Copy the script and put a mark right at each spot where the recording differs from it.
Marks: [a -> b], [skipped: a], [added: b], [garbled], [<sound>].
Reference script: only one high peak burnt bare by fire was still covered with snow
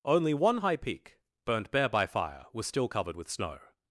only one high peak burnt bare by fire was still covered with snow